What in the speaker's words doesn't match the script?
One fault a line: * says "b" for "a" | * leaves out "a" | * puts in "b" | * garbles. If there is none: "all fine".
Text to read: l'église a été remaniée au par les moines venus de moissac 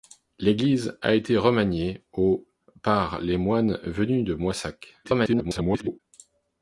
* garbles